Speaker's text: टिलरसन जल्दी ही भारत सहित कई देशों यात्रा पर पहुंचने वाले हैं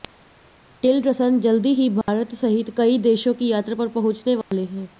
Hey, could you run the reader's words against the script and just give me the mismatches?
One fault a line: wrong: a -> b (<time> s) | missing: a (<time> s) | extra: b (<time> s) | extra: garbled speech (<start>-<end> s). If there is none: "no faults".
extra: की (3.3 s)